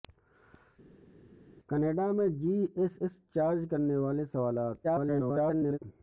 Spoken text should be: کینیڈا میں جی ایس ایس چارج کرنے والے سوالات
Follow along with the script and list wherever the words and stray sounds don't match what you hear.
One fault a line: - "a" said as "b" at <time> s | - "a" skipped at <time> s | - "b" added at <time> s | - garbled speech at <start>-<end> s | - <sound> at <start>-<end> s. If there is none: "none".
- garbled speech at 4.8-5.8 s